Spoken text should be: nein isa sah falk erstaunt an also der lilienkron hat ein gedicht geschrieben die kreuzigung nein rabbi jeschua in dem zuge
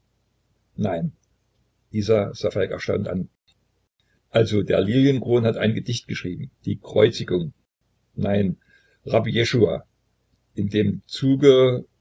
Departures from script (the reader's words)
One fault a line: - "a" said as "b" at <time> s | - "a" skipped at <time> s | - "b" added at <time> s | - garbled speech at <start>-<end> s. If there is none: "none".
none